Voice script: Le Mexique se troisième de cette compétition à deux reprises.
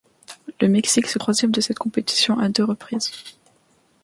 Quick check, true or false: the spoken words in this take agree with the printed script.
true